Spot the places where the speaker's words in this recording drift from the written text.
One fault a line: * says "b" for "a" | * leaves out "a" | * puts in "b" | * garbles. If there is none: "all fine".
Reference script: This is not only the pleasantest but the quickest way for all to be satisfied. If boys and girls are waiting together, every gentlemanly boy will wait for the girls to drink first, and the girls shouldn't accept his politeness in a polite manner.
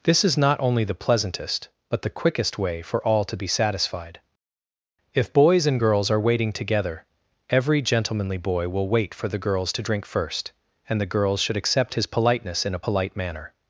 * says "should" for "shouldn't"